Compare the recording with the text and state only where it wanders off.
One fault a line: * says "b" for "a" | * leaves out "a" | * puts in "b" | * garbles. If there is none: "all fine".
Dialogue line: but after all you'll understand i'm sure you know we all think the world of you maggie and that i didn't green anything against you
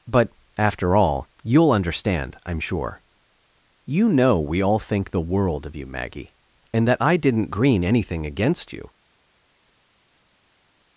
all fine